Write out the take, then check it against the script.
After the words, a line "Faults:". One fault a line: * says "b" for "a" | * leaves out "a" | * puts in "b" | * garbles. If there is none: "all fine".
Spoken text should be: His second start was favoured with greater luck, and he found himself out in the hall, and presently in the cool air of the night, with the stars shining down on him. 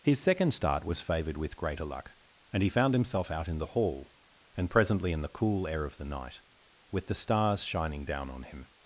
His second start was favoured with greater luck, and he found himself out in the hall, and presently in the cool air of the night, with the stars shining down on him.
Faults:
all fine